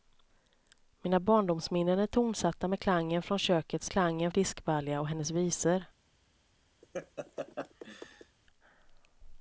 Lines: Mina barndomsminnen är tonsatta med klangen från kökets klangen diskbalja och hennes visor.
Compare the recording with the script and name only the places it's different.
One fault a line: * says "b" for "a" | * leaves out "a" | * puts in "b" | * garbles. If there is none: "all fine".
all fine